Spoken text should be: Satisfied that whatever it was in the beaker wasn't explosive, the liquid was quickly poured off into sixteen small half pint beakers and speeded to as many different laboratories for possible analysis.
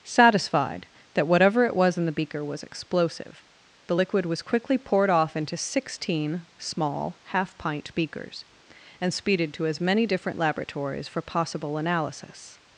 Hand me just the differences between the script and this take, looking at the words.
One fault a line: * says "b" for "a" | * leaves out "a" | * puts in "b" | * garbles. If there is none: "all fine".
* says "was" for "wasn't"